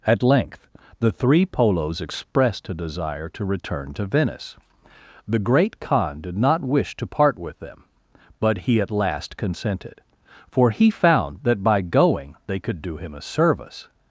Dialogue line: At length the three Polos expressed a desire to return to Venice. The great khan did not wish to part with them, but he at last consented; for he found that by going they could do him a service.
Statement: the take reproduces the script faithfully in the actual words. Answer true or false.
true